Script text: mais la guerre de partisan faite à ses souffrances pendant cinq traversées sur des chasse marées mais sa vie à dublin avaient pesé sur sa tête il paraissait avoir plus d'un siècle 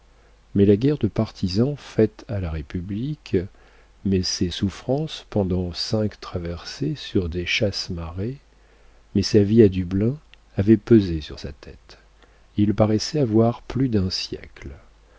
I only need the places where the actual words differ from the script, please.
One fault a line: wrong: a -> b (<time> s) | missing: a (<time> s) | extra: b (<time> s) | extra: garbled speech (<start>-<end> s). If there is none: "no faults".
extra: la république mais (2.4 s)